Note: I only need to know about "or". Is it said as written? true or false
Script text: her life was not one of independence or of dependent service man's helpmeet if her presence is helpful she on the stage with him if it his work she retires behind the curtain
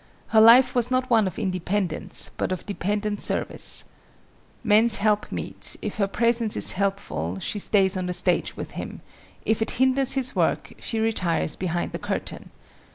false